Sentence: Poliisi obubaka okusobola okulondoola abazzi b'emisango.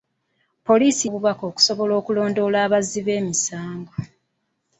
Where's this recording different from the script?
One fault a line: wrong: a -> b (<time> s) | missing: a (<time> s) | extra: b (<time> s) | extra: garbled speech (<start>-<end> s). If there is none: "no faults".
no faults